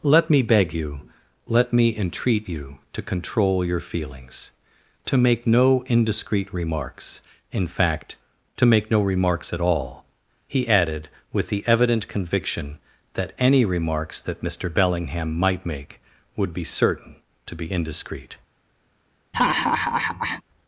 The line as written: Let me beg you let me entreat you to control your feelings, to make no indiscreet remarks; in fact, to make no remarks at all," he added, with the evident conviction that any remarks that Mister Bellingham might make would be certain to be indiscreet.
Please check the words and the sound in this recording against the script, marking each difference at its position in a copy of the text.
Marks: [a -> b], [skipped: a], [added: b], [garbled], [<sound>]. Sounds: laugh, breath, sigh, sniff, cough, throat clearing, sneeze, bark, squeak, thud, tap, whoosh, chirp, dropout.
Let me beg you let me entreat you to control your feelings, to make no indiscreet remarks; in fact, to make no remarks at all," he added, with the evident conviction that any remarks that Mister Bellingham might make would be certain to be indiscreet. [laugh]